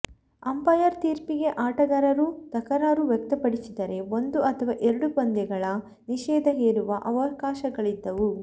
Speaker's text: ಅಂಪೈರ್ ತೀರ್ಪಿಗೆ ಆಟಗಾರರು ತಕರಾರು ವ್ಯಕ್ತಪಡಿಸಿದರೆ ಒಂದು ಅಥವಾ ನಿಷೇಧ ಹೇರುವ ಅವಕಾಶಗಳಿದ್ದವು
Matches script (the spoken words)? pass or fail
fail